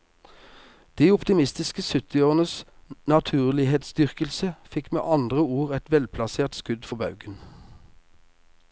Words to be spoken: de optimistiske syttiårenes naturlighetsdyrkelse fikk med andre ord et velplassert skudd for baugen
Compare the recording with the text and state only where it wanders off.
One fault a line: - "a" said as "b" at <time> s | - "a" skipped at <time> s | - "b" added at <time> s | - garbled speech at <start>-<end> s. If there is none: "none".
none